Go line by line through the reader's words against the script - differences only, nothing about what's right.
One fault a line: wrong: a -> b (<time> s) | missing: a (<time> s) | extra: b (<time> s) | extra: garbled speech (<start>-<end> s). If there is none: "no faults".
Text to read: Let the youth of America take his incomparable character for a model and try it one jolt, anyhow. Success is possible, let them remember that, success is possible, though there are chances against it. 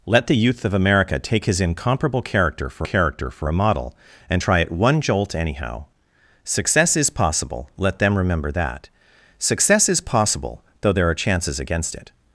extra: character for (2.8 s)